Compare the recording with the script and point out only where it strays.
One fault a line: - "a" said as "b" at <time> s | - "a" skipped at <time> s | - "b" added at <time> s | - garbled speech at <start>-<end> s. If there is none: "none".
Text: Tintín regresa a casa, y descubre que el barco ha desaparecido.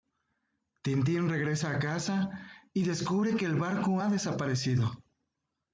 none